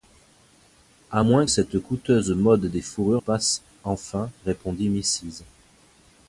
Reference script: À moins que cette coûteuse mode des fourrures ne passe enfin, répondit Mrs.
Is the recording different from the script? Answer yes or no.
yes